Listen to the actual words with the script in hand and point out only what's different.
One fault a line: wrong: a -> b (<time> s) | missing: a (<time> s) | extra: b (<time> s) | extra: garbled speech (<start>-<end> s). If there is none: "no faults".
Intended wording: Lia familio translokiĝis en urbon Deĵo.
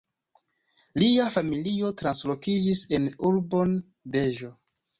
no faults